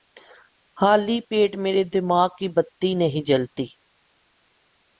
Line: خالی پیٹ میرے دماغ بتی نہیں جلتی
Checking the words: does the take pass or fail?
fail